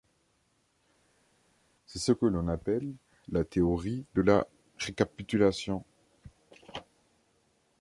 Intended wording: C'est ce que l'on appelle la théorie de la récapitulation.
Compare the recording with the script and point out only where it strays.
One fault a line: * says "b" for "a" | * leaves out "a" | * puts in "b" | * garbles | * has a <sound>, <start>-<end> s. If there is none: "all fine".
all fine